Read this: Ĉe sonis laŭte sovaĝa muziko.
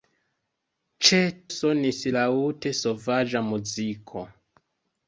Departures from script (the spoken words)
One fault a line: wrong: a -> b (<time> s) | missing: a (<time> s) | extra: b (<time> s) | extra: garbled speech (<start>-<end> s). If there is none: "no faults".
no faults